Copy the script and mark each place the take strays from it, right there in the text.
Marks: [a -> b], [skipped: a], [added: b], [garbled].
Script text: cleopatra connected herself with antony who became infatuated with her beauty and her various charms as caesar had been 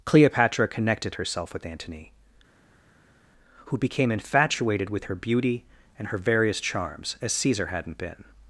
cleopatra connected herself with antony who became infatuated with her beauty and her various charms as caesar [had -> hadn't] been